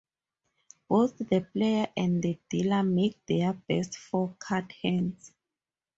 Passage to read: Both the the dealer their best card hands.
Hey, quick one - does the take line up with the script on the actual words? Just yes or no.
no